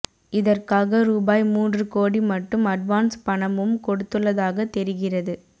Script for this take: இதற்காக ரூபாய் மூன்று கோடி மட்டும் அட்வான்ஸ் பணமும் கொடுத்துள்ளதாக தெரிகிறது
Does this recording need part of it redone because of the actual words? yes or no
no